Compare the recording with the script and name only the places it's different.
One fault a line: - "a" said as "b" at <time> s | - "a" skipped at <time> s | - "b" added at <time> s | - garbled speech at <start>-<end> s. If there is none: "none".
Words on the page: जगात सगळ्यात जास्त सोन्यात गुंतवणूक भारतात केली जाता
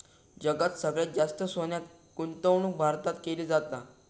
none